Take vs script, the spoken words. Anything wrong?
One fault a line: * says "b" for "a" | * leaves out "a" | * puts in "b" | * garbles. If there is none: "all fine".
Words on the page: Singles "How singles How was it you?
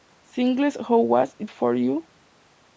* leaves out "singles How"
* puts in "for"